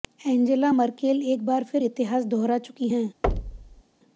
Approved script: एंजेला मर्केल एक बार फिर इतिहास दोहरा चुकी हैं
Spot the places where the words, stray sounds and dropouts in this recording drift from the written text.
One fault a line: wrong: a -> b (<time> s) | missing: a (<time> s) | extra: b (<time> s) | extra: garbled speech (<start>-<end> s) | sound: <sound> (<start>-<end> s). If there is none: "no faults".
sound: thud (3.2-3.8 s)